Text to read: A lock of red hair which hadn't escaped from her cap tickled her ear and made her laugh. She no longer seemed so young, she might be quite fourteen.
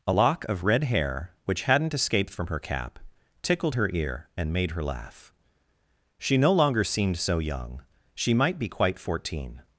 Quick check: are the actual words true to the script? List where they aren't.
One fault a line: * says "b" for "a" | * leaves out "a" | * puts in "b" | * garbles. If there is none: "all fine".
all fine